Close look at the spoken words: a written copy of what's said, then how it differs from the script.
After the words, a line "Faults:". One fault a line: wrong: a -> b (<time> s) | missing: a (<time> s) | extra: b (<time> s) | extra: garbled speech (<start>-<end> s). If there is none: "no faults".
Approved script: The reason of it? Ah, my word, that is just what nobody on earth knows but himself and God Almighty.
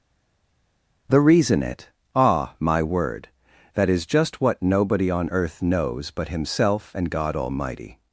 The reason it? Ah, my word, that is just what nobody on earth knows but himself and God Almighty.
Faults:
missing: of (1.6 s)